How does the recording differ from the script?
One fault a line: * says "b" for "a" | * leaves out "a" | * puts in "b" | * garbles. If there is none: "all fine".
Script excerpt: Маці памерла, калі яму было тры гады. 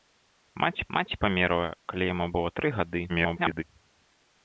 * puts in "маці"
* garbles